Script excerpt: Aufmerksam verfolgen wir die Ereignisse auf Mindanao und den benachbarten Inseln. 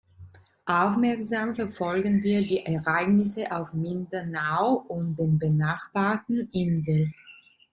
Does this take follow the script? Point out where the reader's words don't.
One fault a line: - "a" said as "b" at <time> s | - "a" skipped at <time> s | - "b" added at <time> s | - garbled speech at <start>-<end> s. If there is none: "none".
none